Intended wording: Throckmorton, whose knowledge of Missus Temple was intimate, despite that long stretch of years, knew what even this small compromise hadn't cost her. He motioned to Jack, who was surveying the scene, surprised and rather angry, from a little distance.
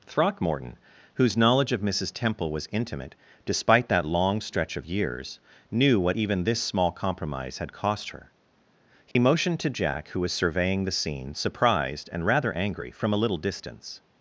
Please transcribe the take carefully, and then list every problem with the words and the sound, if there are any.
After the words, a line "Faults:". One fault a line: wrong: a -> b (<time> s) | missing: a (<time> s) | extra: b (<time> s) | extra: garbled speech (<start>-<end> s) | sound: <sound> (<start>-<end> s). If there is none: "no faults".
Throckmorton, whose knowledge of Missus Temple was intimate, despite that long stretch of years, knew what even this small compromise had cost her. He motioned to Jack, who was surveying the scene, surprised and rather angry, from a little distance.
Faults:
wrong: hadn't -> had (7.6 s)
sound: dropout (9.1-9.2 s)